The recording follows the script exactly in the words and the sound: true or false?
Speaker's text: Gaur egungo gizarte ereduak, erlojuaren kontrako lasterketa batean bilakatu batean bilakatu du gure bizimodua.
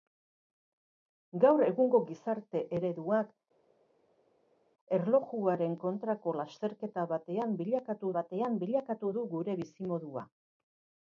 true